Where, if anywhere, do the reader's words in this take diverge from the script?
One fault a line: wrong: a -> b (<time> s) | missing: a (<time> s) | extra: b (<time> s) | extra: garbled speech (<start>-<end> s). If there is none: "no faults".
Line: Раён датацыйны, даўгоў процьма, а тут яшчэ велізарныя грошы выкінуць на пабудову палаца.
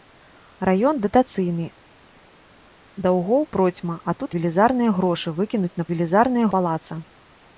missing: яшчэ (4.3 s)
wrong: пабудову -> велізарныя (5.9 s)